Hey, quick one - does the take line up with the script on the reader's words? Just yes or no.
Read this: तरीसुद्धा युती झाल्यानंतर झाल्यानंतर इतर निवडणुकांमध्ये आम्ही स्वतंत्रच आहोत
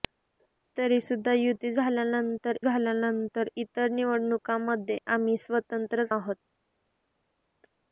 yes